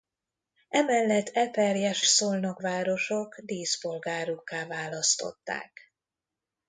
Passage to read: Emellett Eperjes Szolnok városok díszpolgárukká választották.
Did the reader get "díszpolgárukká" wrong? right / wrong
right